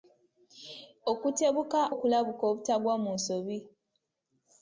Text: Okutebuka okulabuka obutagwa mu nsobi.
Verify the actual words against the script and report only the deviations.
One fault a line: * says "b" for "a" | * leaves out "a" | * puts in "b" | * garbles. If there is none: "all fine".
all fine